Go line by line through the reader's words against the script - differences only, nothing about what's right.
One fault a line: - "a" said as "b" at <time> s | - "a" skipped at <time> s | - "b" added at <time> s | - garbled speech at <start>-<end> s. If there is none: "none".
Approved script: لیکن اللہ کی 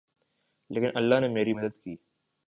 - "نے میری مدد" added at 1.2 s